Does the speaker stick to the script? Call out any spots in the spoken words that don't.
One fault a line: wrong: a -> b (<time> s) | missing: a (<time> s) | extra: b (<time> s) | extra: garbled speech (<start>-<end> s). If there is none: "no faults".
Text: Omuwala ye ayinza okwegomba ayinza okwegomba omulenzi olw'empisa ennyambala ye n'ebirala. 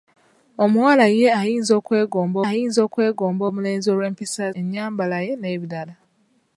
no faults